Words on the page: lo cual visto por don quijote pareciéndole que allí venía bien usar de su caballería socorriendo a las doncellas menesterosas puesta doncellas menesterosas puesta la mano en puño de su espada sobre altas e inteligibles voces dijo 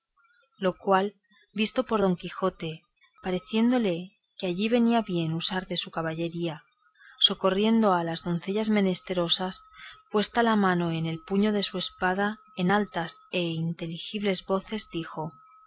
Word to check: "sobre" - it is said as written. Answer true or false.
false